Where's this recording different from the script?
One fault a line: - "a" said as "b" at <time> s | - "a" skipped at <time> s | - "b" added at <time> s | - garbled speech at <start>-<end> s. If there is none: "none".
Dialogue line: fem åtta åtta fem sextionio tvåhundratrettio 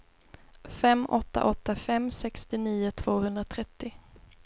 none